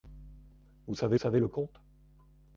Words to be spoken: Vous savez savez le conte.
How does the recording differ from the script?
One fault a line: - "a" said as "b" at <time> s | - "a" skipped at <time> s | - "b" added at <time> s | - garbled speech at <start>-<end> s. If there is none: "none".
none